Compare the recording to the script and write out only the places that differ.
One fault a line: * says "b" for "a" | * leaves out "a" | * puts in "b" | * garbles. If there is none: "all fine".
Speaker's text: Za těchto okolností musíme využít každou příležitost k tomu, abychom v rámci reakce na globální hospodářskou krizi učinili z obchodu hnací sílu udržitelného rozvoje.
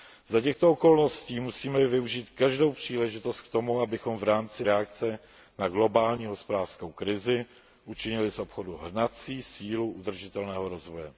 all fine